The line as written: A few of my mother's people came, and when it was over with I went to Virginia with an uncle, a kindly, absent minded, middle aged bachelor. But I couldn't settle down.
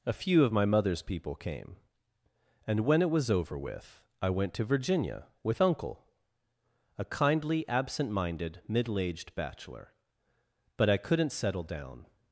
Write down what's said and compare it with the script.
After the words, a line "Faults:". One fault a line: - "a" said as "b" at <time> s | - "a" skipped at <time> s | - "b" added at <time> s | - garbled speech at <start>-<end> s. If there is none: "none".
A few of my mother's people came, and when it was over with I went to Virginia with uncle, a kindly, absent minded, middle aged bachelor. But I couldn't settle down.
Faults:
- "an" skipped at 5.6 s